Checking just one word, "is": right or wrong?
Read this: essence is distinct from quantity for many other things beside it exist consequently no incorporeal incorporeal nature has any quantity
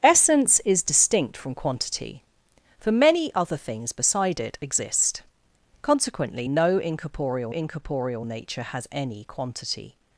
right